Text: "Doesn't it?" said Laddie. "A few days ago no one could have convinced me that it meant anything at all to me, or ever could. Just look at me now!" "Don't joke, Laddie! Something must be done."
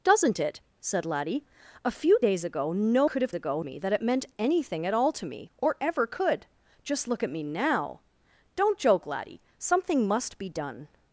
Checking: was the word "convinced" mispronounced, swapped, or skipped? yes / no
yes